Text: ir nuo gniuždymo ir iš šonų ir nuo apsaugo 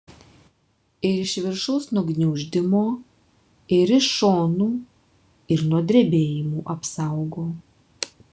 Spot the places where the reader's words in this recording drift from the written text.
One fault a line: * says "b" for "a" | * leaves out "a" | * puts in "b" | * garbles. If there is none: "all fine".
* puts in "iš viršaus"
* puts in "drebėjimų"